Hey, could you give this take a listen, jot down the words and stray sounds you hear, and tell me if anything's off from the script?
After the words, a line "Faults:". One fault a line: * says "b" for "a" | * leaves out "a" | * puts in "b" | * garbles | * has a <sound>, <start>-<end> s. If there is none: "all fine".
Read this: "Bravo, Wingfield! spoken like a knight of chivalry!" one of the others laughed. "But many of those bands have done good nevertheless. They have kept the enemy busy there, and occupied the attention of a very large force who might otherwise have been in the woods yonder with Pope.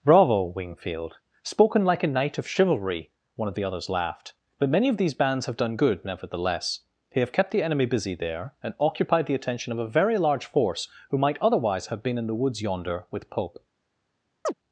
"Bravo, Wingfield! spoken like a knight of chivalry!" one of the others laughed. "But many of these bands have done good nevertheless. They have kept the enemy busy there, and occupied the attention of a very large force who might otherwise have been in the woods yonder with Pope.
Faults:
* says "these" for "those"
* has a chirp, 14.5-14.5 s